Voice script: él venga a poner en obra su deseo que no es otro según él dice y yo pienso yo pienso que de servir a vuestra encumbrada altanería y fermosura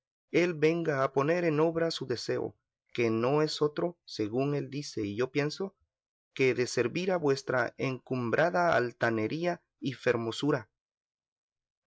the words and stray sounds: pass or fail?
fail